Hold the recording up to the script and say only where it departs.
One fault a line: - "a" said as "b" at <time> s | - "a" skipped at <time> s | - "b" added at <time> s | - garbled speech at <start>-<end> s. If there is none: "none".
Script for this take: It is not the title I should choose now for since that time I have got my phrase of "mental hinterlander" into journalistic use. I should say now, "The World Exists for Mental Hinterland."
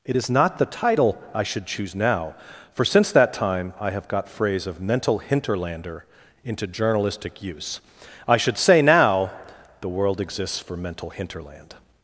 - "my" skipped at 4.3 s